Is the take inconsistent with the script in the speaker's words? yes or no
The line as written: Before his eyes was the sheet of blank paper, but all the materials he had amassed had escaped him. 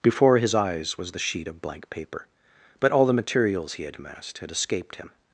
no